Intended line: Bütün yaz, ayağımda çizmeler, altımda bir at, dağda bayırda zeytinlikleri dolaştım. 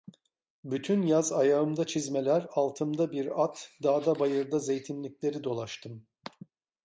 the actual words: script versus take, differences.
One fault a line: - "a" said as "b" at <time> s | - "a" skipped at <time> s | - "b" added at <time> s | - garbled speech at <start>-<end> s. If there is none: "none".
none